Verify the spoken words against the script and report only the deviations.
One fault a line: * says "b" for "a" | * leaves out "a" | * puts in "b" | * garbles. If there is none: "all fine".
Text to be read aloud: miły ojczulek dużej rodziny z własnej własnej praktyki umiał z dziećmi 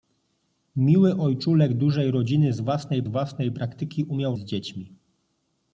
all fine